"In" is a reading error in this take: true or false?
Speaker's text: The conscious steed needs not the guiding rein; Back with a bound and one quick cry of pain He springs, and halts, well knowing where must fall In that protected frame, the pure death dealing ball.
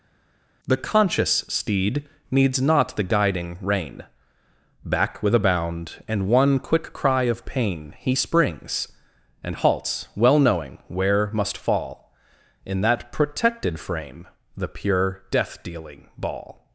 false